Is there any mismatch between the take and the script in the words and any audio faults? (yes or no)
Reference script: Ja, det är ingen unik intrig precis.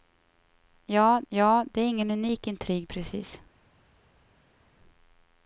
yes